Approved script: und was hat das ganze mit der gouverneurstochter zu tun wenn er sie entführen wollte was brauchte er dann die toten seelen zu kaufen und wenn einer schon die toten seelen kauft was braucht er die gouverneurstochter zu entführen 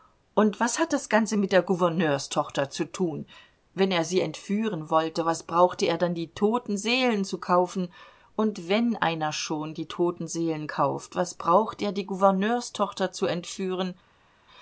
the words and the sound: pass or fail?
pass